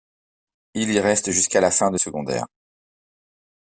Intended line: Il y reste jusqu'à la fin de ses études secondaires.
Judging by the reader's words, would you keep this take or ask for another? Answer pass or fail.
fail